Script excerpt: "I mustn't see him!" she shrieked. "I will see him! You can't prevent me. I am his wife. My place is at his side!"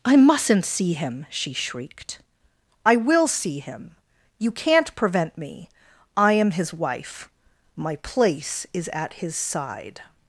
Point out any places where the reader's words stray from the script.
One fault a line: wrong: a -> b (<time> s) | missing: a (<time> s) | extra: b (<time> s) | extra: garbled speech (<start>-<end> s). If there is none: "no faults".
no faults